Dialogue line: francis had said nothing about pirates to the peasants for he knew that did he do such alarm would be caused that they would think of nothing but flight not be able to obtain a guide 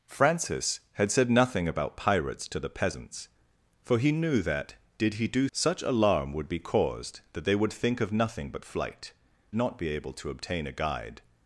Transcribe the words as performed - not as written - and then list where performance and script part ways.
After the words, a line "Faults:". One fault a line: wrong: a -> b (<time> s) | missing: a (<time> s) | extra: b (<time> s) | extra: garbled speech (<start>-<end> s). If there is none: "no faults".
francis had said nothing about pirates to the peasants for he knew that did he do such alarm would be caused that they would think of nothing but flight not be able to obtain a guide
Faults:
no faults